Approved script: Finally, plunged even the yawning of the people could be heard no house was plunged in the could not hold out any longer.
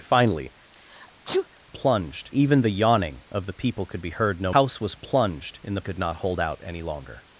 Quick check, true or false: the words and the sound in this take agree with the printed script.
false